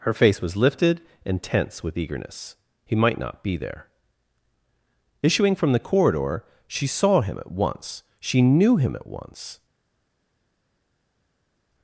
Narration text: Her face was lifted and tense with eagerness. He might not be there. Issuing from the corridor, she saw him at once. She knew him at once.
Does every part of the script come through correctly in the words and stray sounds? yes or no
yes